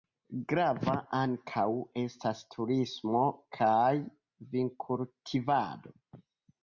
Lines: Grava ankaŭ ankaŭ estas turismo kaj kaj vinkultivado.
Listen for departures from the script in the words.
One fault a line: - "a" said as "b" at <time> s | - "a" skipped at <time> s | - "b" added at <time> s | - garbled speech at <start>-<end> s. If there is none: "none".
- "ankaŭ" skipped at 1.6 s
- "kaj" skipped at 3.9 s